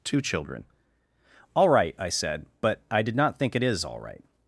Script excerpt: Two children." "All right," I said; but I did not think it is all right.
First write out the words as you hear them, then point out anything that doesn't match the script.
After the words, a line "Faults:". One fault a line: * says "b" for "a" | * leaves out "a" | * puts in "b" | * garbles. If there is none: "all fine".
Two children." "All right," I said; but I did not think it is all right.
Faults:
all fine